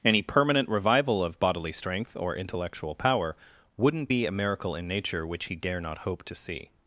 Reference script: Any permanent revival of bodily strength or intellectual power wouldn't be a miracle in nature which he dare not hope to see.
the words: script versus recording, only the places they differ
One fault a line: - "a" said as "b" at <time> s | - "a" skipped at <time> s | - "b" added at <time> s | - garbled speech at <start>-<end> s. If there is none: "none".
none